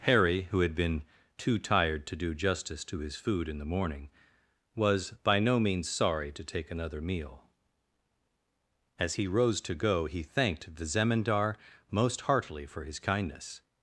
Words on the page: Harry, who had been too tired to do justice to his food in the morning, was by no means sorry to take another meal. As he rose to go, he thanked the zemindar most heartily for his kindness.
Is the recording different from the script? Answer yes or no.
no